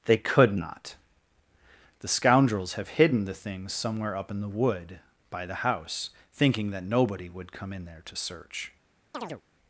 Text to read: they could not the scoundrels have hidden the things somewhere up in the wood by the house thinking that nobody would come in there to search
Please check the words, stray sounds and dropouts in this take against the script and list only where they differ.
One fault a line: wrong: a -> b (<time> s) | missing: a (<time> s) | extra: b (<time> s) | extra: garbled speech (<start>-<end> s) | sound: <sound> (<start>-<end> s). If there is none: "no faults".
sound: chirp (9.1-9.4 s)